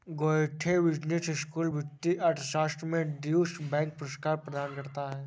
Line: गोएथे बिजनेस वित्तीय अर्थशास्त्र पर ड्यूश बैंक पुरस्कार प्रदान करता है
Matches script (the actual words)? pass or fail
fail